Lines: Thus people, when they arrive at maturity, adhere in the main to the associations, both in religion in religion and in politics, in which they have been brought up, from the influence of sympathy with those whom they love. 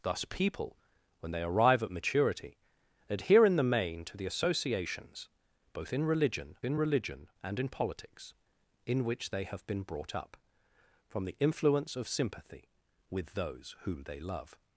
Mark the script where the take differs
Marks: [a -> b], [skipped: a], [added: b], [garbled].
Thus people, when they arrive at maturity, adhere in the main to the associations, both in religion in religion and in politics, in which they have been brought up, from the influence of sympathy with those whom they love.